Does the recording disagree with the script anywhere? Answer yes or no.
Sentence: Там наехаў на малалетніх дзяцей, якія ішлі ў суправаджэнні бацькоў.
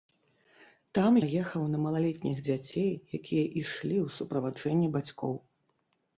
no